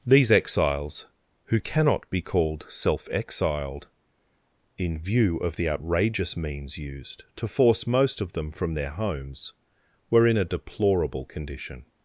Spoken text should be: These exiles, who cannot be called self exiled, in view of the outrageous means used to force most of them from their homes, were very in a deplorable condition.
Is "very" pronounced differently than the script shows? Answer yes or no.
yes